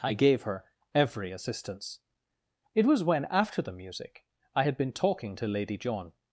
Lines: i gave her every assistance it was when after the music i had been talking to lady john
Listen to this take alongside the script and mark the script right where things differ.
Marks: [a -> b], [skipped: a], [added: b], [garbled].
i gave her every assistance it was when after the music i had been talking to lady john